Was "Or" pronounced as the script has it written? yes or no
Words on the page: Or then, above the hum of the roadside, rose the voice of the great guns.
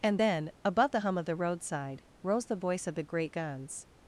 no